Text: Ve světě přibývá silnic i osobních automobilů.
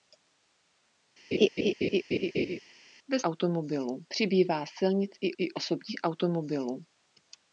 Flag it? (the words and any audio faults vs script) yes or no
yes